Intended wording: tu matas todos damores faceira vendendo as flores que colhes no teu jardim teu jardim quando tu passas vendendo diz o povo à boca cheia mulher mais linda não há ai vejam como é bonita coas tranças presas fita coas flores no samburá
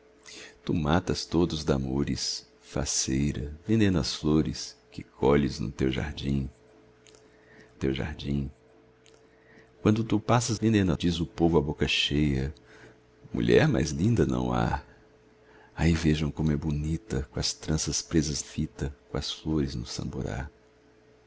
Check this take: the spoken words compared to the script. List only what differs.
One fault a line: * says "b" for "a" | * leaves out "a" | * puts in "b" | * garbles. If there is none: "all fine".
all fine